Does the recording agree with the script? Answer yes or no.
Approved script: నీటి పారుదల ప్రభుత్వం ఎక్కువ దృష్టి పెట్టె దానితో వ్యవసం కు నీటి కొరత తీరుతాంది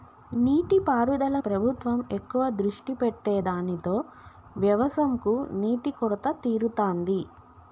yes